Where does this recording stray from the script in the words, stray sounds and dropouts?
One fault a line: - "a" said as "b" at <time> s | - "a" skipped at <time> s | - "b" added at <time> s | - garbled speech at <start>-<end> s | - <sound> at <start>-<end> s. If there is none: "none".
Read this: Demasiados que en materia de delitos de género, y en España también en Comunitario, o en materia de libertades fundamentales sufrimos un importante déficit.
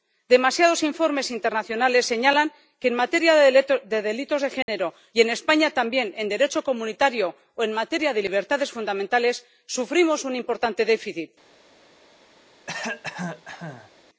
- "informes internacionales señalan" added at 0.9 s
- dropout at 4.6-4.7 s
- "Derecho" added at 6.3 s
- cough at 12.7-13.9 s